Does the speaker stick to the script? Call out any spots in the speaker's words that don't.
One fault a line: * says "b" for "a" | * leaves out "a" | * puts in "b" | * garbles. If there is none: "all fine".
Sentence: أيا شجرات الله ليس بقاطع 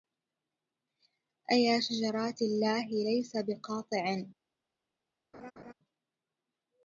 all fine